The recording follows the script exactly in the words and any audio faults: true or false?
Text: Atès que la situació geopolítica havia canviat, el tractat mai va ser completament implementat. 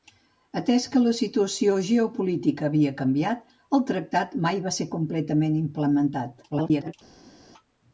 false